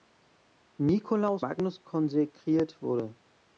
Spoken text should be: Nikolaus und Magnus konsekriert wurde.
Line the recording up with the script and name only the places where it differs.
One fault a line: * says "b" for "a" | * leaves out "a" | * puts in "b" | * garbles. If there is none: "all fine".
* leaves out "und"